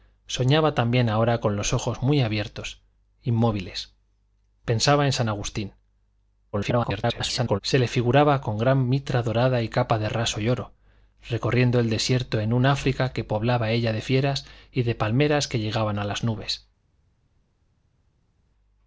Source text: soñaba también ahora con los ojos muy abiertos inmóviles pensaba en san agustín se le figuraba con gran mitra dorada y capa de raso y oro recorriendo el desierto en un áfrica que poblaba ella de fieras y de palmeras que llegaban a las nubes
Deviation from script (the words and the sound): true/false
true